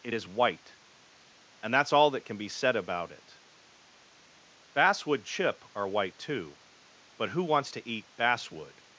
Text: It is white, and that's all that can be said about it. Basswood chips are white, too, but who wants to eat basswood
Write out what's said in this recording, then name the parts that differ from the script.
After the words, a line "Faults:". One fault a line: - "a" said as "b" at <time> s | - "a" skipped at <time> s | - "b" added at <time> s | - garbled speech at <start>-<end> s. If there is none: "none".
It is white, and that's all that can be said about it. Basswood chip are white, too, but who wants to eat basswood
Faults:
- "chips" said as "chip" at 5.2 s